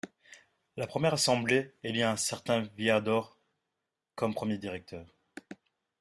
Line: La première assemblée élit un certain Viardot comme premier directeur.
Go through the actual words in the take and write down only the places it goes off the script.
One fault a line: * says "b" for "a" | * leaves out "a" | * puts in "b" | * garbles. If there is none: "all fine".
all fine